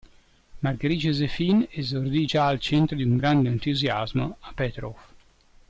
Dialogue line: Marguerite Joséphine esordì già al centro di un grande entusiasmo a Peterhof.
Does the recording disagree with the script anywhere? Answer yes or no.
no